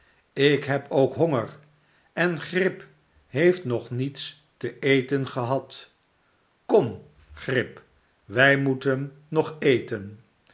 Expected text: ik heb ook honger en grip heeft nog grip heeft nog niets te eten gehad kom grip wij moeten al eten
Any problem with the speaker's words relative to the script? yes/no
yes